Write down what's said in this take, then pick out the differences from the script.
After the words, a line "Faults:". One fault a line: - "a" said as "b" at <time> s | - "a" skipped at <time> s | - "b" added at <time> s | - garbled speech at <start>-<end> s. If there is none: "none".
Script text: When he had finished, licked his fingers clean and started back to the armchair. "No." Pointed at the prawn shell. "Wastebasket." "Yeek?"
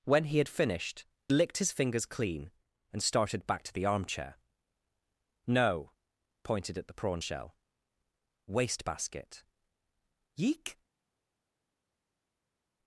When he had finished, licked his fingers clean and started back to the armchair. "No." Pointed at the prawn shell. "Wastebasket." "Yeek?"
Faults:
none